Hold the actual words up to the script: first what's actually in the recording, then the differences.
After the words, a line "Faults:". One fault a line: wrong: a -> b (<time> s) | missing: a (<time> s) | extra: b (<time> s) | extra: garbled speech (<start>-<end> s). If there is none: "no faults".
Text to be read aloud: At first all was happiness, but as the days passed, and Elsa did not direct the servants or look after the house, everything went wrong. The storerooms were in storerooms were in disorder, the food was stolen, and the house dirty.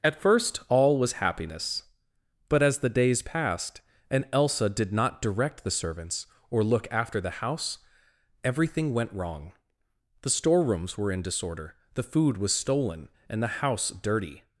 At first all was happiness, but as the days passed, and Elsa did not direct the servants or look after the house, everything went wrong. The storerooms were in disorder, the food was stolen, and the house dirty.
Faults:
missing: storerooms were in (11.2 s)